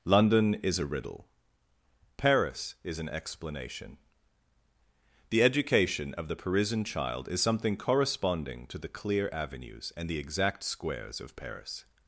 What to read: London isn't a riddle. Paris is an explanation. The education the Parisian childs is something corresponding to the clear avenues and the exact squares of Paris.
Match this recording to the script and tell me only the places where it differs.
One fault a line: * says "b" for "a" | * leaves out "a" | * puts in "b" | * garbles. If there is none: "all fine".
* says "is" for "isn't"
* puts in "of"
* says "child" for "childs"